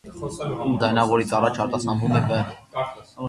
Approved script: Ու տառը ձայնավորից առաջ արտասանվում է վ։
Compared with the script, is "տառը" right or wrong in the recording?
wrong